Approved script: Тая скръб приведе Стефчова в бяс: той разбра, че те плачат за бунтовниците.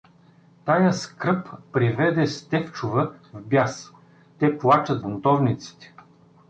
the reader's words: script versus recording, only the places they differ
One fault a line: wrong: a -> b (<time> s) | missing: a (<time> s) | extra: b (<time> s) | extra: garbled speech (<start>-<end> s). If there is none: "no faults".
missing: той разбра че (3.9 s)
missing: за (5.0 s)